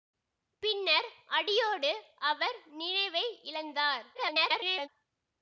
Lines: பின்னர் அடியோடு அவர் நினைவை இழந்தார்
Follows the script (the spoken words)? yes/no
no